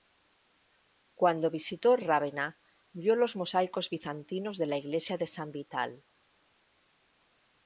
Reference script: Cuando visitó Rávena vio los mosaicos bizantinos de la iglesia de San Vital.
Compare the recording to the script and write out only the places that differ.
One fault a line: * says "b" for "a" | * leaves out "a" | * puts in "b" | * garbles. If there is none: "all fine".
all fine